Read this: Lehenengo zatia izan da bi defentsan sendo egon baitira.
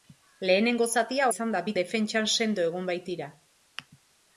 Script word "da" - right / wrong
right